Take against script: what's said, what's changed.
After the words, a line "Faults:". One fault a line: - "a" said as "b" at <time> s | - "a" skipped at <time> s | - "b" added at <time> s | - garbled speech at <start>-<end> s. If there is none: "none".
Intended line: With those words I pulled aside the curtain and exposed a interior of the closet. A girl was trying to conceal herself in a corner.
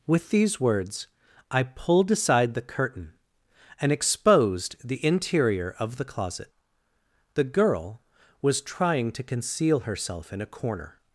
With these words I pulled aside the curtain and exposed the interior of the closet. The girl was trying to conceal herself in a corner.
Faults:
- "those" said as "these" at 0.3 s
- "a" said as "the" at 4.8 s
- "A" said as "The" at 7.3 s